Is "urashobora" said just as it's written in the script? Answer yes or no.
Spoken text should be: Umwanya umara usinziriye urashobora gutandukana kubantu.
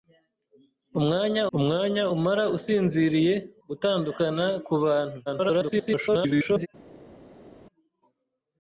no